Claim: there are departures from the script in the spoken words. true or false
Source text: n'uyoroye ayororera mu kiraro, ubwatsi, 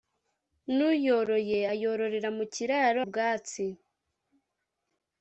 false